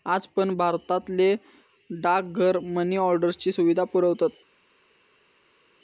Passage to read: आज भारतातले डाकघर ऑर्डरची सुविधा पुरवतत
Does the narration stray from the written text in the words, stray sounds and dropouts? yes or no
yes